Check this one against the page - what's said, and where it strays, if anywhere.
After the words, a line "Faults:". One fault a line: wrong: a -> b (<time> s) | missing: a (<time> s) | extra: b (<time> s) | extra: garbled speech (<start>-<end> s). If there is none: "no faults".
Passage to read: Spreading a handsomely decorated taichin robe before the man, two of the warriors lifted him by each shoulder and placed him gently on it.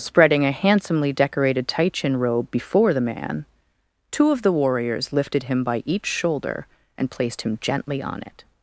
Spreading a handsomely decorated taichin robe before the man, two of the warriors lifted him by each shoulder and placed him gently on it.
Faults:
no faults